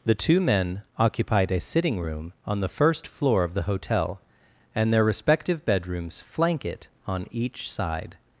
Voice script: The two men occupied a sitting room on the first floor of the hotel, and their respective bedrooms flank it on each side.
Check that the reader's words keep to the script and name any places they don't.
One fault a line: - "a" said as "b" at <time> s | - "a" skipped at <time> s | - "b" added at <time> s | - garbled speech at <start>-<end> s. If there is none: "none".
none